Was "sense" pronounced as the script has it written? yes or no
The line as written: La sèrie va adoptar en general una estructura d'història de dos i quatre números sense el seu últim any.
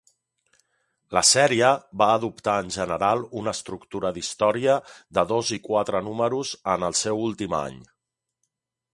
no